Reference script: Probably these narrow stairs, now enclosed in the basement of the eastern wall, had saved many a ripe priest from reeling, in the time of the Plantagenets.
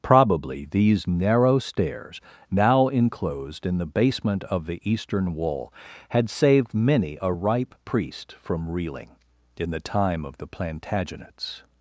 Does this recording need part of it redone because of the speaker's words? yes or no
no